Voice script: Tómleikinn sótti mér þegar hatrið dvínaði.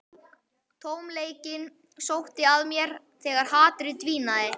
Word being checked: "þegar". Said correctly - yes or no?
yes